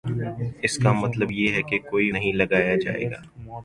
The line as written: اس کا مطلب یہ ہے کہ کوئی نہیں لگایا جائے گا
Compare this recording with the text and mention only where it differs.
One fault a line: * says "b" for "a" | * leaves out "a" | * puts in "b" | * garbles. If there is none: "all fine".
all fine